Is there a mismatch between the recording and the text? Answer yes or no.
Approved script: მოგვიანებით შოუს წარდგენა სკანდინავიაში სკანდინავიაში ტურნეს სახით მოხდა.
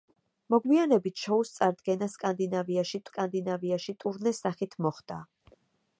no